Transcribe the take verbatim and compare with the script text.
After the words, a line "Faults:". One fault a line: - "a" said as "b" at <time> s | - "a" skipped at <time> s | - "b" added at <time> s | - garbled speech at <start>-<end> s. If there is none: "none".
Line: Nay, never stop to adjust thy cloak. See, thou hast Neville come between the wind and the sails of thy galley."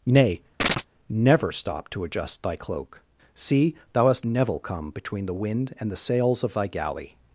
Nay, never stop to adjust thy cloak. See, thou hast Neville come between the wind and the sails of thy galley."
Faults:
none